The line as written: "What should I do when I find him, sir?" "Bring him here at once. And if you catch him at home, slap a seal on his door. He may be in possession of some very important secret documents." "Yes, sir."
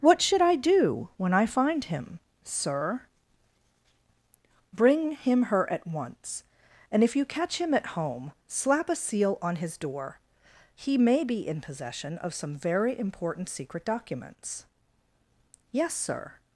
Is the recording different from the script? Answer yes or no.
yes